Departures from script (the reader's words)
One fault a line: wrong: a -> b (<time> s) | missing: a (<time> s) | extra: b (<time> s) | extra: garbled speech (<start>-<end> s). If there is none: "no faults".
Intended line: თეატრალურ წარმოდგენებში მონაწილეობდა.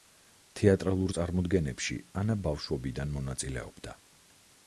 extra: ანა ბავშვობიდან (2.2 s)